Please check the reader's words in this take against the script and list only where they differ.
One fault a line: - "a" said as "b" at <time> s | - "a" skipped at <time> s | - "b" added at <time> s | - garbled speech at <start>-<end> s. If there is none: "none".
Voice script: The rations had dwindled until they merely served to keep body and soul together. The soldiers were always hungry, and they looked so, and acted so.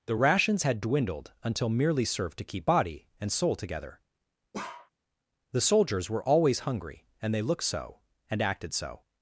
- "they" skipped at 1.7 s